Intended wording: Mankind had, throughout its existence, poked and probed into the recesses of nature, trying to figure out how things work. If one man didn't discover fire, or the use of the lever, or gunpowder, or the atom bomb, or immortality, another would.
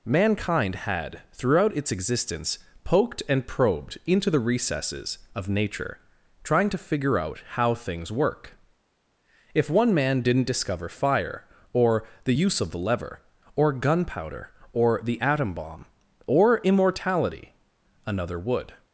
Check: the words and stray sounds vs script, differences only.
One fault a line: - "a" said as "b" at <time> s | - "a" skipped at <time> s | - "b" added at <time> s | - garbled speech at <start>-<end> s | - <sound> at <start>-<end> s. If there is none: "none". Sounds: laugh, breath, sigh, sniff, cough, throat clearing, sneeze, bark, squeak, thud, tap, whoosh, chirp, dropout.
none